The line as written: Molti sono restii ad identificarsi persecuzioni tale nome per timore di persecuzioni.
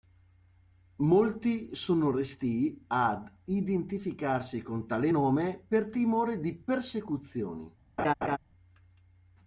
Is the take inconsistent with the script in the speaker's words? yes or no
yes